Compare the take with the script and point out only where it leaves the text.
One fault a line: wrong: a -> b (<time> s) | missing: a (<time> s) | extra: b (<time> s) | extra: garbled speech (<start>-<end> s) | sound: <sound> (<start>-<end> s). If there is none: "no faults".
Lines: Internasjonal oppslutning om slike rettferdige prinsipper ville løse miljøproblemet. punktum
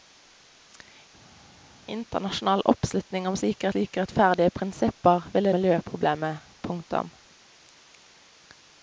extra: slike (3.7 s)
missing: løse (5.5 s)